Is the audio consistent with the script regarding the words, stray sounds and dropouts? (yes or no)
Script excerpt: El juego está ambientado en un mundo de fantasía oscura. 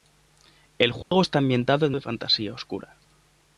no